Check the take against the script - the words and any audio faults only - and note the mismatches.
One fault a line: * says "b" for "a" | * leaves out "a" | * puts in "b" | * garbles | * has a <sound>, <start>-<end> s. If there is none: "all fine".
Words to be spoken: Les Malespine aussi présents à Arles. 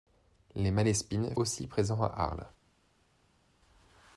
all fine